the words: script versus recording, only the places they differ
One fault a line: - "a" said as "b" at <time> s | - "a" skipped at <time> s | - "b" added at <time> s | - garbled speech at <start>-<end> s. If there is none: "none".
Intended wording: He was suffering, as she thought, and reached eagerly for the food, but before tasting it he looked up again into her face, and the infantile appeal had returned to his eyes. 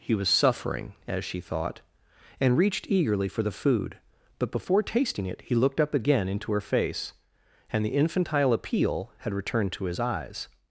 none